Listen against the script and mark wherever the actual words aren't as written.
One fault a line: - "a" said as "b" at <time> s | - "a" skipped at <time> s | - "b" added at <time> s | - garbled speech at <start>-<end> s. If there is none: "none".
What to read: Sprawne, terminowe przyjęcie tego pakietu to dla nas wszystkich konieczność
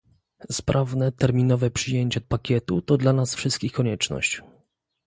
- "tego" skipped at 2.2 s